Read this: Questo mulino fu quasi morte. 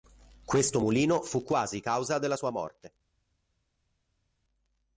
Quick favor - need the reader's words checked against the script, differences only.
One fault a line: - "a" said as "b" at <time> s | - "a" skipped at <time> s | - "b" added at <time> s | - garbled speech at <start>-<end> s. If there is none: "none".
- "causa della sua" added at 1.8 s